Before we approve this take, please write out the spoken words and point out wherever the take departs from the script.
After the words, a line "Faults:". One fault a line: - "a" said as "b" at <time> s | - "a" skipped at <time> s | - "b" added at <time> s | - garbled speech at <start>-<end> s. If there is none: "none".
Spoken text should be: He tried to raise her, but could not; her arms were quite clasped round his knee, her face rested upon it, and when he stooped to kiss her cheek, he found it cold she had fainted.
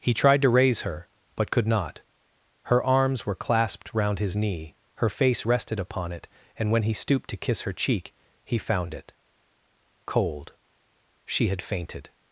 He tried to raise her, but could not; her arms were clasped round his knee, her face rested upon it, and when he stooped to kiss her cheek, he found it cold she had fainted.
Faults:
- "quite" skipped at 3.4 s